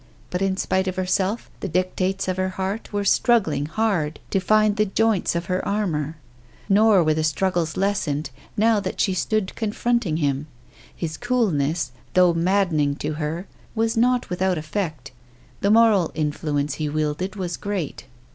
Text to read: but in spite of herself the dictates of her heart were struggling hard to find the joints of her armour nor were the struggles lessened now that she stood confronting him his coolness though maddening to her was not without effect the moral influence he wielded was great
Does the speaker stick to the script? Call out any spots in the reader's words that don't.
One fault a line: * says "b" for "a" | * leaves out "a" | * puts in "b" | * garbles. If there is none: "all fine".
all fine